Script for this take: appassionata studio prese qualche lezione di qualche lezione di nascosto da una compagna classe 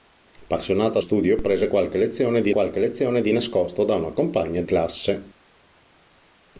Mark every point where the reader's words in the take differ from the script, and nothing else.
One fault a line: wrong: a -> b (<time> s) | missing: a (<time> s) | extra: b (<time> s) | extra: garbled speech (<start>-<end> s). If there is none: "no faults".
no faults